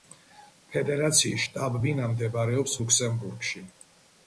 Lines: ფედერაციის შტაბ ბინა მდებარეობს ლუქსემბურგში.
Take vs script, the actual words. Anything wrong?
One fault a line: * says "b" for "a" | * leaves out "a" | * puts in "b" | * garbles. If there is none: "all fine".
all fine